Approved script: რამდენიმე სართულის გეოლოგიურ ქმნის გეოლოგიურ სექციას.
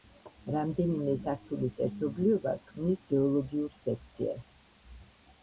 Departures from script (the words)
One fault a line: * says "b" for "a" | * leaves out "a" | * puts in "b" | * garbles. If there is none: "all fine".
* says "ერთობლიობა" for "გეოლოგიურ"